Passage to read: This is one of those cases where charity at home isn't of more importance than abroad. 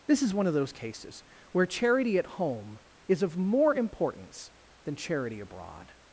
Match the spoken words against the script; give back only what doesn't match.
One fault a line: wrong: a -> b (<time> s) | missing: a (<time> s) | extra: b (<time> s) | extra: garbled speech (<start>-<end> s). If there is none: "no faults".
wrong: isn't -> is (3.1 s)
extra: charity (4.9 s)